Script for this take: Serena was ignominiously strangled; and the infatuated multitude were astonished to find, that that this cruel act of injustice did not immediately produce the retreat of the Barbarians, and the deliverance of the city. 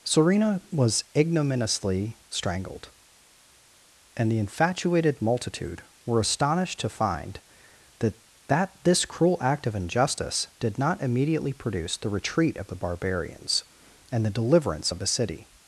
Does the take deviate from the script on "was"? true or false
false